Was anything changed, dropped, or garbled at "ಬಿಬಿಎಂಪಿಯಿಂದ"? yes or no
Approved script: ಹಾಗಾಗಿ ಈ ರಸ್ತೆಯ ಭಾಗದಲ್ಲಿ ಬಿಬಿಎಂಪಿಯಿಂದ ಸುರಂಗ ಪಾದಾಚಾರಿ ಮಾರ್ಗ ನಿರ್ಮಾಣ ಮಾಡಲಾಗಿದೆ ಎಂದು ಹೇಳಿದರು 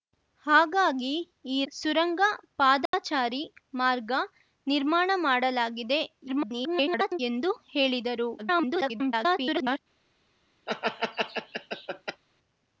yes